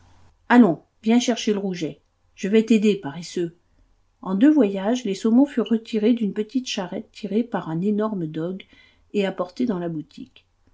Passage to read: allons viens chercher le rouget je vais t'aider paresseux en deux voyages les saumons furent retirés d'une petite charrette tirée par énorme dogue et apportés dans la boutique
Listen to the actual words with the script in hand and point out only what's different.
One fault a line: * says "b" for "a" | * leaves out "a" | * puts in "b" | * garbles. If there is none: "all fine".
* puts in "un"